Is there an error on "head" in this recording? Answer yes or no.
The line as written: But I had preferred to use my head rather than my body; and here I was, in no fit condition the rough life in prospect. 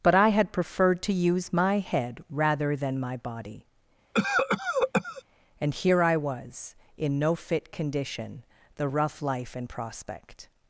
no